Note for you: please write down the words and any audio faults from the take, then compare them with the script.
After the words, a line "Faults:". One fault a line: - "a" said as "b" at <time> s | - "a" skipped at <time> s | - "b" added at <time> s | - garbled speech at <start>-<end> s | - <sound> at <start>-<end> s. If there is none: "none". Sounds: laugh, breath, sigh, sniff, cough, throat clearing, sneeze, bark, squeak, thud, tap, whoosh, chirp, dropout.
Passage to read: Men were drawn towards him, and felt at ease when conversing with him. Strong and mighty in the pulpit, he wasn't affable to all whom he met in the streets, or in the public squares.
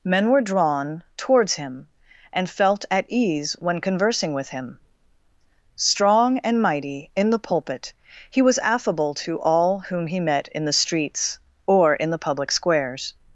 Men were drawn towards him, and felt at ease when conversing with him. Strong and mighty in the pulpit, he was affable to all whom he met in the streets, or in the public squares.
Faults:
- "wasn't" said as "was" at 8.4 s